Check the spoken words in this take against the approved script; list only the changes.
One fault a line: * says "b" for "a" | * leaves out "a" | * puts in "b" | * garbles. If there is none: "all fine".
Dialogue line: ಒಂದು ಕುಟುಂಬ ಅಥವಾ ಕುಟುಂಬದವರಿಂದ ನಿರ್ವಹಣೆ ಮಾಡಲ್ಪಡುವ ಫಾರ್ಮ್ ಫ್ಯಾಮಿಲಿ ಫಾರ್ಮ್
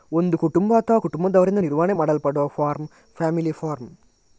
all fine